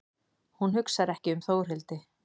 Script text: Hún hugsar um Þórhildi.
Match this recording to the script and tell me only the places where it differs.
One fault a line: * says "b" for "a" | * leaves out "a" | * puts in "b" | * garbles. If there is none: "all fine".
* puts in "ekki"